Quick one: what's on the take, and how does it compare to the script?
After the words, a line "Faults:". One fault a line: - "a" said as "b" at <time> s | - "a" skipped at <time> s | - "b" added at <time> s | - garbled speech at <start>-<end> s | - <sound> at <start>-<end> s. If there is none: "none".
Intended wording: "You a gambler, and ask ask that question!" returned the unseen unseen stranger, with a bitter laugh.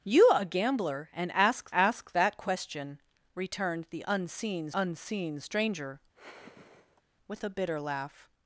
"You a gambler, and ask ask that question!" returned the unseen unseen stranger, with a bitter laugh.
Faults:
- sigh at 6.1-7.0 s